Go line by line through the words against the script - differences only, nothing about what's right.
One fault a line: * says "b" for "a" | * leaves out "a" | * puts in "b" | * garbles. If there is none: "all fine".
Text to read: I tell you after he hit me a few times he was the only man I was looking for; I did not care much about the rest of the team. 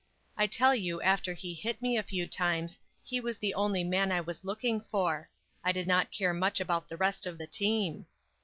all fine